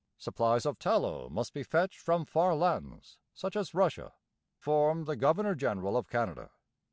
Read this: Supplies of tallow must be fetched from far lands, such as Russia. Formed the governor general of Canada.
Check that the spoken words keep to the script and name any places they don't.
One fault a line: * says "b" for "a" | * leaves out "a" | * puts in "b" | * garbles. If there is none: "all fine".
all fine